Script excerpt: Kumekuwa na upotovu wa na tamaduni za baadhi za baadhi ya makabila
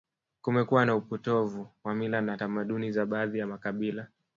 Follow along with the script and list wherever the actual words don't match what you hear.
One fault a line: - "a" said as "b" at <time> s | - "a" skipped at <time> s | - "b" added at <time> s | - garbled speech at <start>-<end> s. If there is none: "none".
- "mila" added at 1.9 s
- "za baadhi" skipped at 3.4 s